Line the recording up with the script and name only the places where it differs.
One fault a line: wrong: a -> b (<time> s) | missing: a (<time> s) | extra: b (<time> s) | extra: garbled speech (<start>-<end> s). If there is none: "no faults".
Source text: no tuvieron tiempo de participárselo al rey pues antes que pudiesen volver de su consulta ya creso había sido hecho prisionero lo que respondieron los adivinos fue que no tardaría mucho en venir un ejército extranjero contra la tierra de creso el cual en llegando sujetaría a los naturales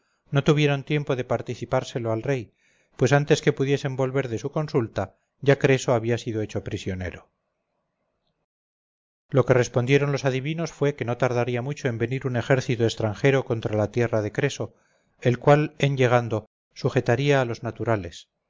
no faults